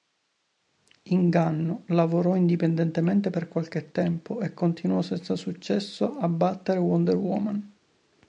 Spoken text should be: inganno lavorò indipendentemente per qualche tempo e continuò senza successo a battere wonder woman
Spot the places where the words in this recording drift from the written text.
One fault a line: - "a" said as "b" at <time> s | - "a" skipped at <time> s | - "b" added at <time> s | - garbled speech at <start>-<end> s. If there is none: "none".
none